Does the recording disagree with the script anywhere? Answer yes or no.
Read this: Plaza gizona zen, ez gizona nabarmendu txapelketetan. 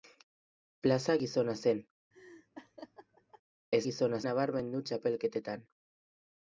no